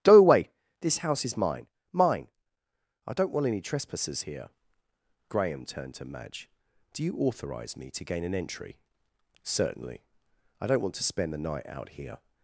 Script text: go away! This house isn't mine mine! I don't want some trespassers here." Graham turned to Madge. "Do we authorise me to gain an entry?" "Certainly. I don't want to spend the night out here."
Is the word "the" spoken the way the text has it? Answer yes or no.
yes